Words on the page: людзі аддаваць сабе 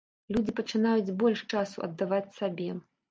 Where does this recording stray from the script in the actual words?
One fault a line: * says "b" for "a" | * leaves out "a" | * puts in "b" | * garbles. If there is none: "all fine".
* puts in "пачынаюць больш часу"